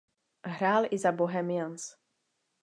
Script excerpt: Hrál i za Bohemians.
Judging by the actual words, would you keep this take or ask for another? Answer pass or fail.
pass